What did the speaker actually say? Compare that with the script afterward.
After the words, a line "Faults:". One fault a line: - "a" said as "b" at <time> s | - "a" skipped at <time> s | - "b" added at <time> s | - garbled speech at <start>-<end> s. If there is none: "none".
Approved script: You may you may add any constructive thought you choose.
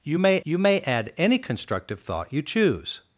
You may you may add any constructive thought you choose.
Faults:
none